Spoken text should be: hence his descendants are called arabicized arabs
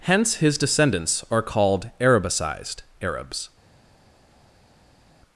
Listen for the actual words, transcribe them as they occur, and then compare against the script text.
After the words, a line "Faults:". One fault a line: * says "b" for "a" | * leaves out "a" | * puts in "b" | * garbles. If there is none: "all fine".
hence his descendants are called arabicized arabs
Faults:
all fine